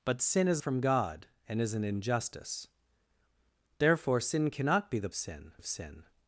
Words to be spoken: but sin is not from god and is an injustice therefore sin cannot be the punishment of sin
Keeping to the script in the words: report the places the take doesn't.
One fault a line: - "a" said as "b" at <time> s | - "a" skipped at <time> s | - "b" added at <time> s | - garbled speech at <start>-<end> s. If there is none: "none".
- "not" skipped at 0.6 s
- "punishment" said as "sin" at 5.1 s